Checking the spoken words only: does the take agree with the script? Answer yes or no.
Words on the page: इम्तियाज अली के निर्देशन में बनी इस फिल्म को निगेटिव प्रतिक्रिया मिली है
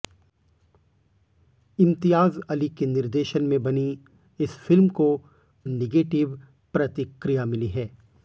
yes